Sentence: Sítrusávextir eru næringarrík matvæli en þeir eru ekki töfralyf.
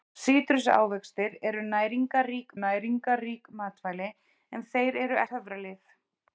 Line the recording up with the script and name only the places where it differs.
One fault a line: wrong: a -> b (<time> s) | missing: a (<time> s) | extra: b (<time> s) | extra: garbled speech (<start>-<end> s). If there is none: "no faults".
extra: næringarrík (2.6 s)
missing: ekki (5.2 s)